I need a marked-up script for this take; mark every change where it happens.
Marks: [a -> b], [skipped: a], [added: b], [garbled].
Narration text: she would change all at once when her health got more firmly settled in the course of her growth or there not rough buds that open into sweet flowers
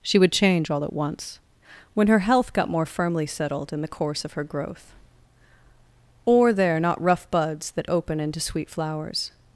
she would change all at once when her health got more firmly settled in the course of her growth or there not rough buds that open into sweet flowers